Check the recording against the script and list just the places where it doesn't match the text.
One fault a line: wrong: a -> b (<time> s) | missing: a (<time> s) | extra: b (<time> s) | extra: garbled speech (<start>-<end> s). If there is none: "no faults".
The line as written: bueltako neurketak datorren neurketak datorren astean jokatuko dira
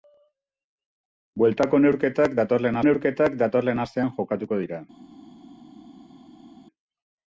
no faults